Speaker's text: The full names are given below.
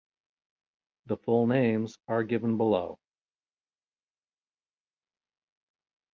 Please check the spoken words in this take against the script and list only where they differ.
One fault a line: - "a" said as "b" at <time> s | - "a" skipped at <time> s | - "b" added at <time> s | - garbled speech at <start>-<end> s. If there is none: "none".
none